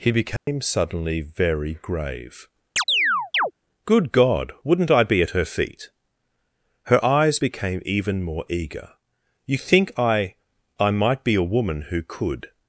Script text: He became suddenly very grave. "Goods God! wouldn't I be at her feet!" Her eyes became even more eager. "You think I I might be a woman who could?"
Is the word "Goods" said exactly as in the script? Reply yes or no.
no